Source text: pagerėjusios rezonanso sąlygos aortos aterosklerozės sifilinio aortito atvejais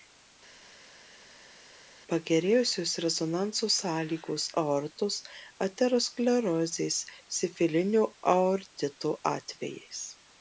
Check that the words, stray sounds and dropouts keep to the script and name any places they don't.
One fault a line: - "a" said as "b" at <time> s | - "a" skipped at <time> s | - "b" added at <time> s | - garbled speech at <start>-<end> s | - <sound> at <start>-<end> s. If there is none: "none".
none